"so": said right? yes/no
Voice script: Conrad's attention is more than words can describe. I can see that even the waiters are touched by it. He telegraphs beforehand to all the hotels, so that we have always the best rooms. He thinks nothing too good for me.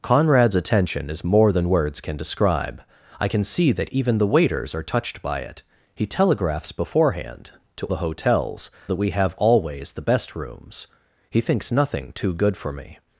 no